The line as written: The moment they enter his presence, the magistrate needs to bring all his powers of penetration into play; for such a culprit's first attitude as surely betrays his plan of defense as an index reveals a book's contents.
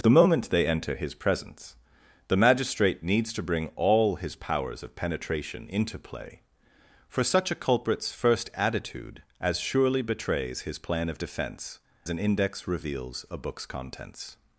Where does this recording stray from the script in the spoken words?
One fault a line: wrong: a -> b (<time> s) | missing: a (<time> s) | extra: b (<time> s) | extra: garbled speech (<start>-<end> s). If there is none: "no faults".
missing: as (11.8 s)